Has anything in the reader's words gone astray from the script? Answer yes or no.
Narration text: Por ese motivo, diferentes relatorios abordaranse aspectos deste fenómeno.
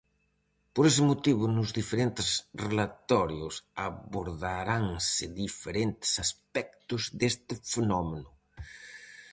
yes